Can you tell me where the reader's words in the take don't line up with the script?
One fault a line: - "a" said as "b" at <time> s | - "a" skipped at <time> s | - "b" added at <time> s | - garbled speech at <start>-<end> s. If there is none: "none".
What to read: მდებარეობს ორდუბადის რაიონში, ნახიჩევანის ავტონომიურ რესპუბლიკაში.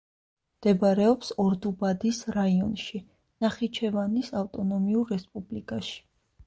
none